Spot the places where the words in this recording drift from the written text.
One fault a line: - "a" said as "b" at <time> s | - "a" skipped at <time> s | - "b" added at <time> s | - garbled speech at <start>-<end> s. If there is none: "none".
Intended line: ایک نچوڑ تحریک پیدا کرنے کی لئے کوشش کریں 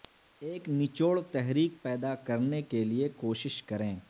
- "کی" said as "کے" at 2.6 s